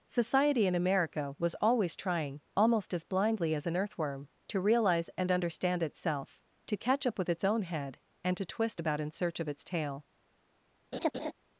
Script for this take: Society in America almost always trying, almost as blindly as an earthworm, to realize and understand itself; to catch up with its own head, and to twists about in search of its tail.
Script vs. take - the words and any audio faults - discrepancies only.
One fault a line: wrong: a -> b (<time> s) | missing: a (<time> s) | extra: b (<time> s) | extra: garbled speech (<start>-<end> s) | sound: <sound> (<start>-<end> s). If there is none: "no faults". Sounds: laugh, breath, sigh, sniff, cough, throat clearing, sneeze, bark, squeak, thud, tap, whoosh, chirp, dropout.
wrong: almost -> was (1.4 s)
wrong: twists -> twist (8.4 s)
sound: laugh (10.9-11.3 s)